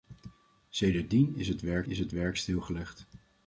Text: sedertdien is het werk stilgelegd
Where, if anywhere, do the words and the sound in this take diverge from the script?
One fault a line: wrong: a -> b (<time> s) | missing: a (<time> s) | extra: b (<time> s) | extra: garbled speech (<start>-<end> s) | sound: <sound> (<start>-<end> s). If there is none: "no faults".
extra: is het werk (1.9 s)